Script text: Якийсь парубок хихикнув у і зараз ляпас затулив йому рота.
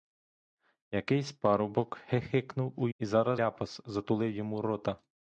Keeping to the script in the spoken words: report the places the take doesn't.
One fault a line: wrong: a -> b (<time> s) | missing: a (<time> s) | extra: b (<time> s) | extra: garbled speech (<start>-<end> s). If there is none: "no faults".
no faults